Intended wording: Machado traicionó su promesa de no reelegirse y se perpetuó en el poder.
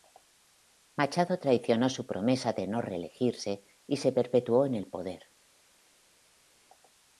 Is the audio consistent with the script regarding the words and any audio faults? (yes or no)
yes